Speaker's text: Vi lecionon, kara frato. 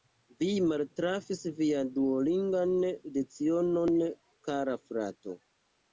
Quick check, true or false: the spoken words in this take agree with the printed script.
false